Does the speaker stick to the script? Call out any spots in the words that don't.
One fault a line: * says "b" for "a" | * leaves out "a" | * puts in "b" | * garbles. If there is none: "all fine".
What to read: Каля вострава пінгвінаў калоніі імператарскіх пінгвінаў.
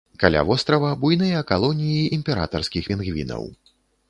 * says "буйныя" for "пінгвінаў"